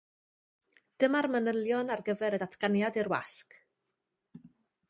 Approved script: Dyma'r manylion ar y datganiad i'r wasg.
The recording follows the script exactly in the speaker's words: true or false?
false